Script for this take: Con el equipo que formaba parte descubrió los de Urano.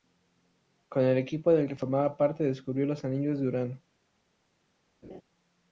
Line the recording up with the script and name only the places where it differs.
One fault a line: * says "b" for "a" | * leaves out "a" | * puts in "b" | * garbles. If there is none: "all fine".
* puts in "del"
* puts in "anillos"